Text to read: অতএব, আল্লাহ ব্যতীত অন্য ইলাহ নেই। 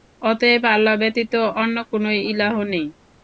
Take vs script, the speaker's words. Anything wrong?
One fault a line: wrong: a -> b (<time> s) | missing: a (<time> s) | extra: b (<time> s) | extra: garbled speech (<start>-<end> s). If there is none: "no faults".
extra: কোন (1.9 s)